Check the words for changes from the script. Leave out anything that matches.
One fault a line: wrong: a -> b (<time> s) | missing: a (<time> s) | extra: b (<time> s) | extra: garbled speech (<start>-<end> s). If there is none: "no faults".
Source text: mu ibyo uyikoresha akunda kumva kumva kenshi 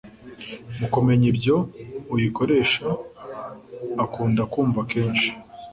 extra: kumenya (0.9 s)
missing: kumva (4.8 s)